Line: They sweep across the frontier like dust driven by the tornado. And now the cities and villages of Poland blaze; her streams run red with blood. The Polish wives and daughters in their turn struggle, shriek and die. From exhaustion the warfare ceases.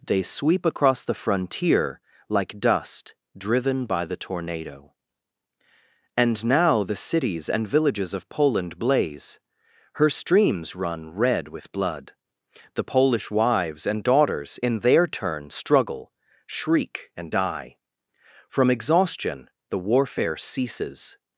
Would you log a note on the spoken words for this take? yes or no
no